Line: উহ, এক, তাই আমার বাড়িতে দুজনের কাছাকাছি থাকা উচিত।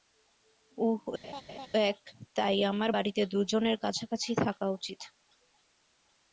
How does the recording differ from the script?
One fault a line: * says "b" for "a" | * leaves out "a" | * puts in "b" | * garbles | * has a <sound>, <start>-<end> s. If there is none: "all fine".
* has a laugh, 1.2-1.7 s